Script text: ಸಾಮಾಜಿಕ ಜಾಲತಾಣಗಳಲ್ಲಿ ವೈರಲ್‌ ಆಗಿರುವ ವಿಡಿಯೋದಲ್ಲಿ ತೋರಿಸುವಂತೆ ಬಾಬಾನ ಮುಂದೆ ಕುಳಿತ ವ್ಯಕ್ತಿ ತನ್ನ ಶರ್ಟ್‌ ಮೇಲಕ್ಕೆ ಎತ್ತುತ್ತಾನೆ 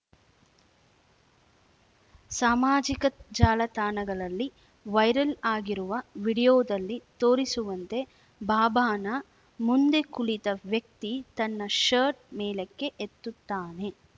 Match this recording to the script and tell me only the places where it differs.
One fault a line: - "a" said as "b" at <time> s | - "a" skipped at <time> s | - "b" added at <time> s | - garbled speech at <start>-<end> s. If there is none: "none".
none